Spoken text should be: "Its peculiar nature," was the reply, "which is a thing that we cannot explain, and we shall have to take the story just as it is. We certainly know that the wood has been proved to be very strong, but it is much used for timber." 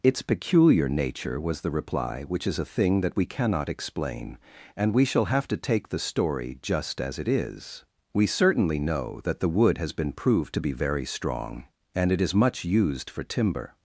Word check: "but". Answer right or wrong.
wrong